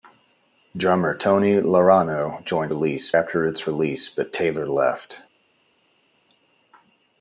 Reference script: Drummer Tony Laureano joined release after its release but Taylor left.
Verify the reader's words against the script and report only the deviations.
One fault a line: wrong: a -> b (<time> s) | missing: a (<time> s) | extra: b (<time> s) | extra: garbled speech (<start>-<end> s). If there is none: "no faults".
no faults